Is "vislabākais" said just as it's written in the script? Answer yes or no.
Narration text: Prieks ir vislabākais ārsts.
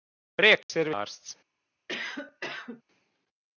no